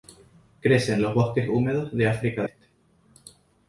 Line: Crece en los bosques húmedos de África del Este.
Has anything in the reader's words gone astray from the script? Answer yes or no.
yes